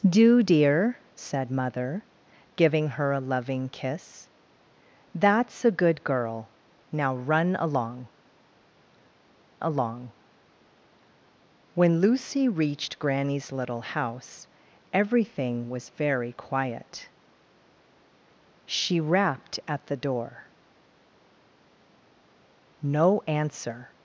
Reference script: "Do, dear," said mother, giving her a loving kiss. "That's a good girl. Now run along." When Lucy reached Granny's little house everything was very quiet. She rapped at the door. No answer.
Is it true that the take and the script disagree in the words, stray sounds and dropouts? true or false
true